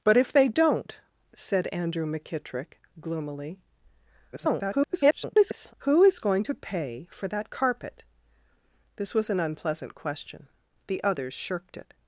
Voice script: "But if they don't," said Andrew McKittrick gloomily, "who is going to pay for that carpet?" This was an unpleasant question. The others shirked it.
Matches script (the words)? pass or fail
fail